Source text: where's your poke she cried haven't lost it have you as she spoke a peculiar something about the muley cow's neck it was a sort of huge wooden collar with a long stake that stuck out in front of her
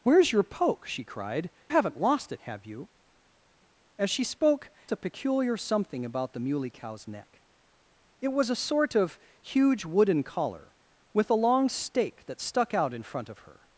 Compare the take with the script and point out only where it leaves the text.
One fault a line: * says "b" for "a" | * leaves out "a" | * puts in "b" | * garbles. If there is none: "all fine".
all fine